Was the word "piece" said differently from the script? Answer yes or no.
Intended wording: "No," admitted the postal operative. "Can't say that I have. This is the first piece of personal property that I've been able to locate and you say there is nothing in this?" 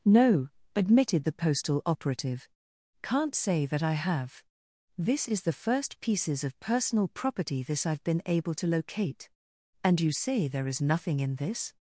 yes